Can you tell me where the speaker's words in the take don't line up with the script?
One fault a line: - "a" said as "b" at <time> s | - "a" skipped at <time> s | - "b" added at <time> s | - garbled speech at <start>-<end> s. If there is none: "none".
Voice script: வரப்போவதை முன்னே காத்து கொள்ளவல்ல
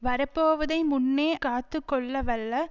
none